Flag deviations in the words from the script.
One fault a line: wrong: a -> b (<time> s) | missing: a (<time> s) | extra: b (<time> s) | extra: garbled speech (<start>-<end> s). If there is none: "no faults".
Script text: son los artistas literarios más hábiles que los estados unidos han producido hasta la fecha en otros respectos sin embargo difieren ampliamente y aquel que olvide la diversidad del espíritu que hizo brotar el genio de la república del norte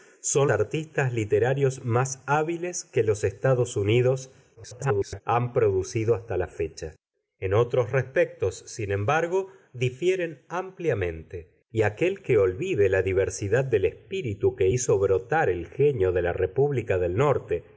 missing: los (0.5 s)
extra: garbled speech (4.6-5.2 s)